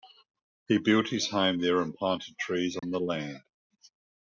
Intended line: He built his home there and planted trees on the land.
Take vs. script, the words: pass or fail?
pass